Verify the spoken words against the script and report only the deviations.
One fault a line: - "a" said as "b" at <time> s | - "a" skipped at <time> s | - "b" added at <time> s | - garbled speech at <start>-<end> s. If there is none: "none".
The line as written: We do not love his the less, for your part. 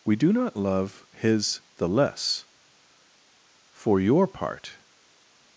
none